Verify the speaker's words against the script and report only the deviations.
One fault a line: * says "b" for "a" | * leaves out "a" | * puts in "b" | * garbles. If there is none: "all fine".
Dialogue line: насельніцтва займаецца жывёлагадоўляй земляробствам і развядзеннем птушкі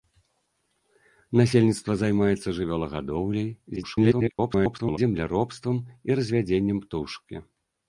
* garbles